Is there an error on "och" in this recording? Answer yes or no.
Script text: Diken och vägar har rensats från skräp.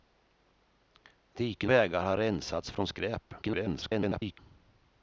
yes